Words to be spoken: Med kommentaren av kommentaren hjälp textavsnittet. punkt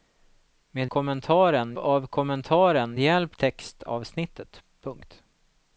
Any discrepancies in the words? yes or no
no